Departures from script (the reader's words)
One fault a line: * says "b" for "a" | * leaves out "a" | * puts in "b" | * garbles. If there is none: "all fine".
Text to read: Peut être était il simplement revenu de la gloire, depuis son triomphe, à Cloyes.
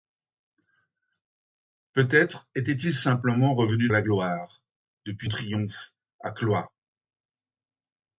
* leaves out "de"
* leaves out "son"